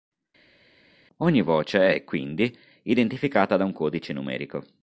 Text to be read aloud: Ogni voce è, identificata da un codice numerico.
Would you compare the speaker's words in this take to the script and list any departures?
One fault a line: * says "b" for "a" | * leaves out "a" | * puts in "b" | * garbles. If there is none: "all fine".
* puts in "quindi"